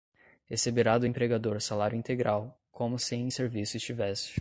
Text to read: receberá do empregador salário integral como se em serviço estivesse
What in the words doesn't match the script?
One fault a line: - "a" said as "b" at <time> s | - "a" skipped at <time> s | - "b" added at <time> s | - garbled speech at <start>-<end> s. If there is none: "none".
none